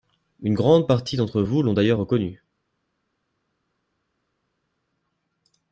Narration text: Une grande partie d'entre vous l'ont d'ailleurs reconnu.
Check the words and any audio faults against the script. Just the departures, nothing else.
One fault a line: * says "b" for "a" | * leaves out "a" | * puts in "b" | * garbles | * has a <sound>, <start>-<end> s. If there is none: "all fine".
all fine